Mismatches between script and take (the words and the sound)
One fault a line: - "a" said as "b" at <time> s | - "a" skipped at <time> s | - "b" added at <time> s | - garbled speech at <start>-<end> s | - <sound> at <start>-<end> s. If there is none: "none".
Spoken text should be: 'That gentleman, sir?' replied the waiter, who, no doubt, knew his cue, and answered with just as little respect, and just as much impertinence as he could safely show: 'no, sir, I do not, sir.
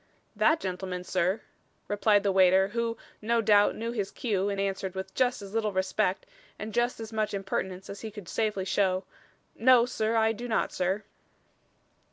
none